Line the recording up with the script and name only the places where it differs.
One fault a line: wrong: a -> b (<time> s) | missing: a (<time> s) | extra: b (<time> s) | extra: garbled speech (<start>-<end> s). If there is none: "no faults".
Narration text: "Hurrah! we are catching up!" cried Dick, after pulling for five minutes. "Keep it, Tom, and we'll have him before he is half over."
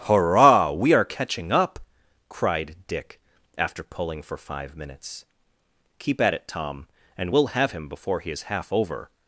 extra: at (6.2 s)